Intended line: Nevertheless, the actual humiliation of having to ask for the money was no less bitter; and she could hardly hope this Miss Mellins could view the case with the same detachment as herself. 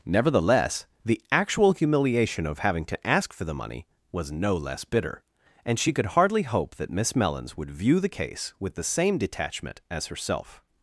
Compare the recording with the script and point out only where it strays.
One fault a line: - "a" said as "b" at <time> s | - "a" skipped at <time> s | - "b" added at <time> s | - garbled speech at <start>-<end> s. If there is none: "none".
- "this" said as "that" at 6.8 s
- "could" said as "would" at 7.6 s